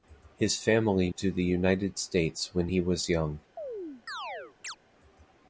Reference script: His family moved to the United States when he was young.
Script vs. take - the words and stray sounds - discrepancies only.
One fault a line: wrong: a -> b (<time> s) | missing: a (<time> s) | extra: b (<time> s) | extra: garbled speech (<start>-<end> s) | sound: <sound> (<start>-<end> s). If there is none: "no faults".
missing: moved (1.1 s)
sound: chirp (3.6-4.8 s)